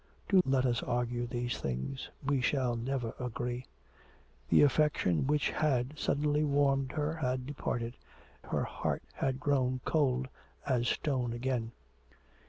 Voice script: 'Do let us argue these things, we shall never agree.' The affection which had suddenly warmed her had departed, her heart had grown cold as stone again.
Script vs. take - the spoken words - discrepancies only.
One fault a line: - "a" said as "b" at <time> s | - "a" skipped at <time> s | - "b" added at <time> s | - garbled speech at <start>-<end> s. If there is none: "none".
none